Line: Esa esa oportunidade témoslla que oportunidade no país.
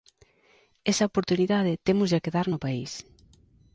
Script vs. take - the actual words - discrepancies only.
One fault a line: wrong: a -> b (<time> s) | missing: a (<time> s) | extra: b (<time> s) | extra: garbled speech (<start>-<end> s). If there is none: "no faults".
missing: esa (1.1 s)
wrong: oportunidade -> dar (2.4 s)